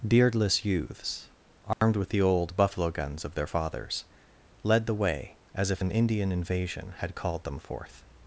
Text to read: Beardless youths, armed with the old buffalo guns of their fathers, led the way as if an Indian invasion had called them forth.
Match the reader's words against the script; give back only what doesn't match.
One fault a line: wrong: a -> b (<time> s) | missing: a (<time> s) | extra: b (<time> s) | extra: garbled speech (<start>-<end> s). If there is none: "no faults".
no faults